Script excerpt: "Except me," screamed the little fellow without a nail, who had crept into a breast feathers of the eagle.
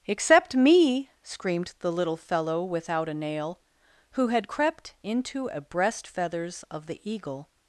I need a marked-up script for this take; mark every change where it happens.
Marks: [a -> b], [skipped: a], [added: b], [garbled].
"Except me," screamed the little fellow without a nail, who had crept into a breast feathers of the eagle.